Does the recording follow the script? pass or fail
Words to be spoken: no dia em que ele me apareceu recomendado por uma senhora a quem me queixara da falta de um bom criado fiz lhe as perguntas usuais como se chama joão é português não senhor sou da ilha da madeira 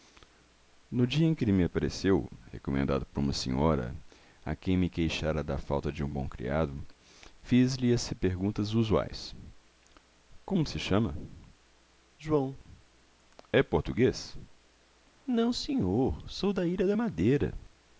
pass